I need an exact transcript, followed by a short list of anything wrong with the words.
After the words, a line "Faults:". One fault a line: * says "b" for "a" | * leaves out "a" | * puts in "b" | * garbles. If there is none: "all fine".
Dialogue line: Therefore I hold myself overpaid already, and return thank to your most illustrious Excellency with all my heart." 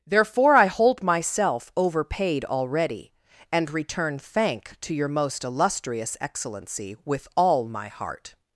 Therefore I hold myself overpaid already, and return thank to your most illustrious Excellency with all my heart."
Faults:
all fine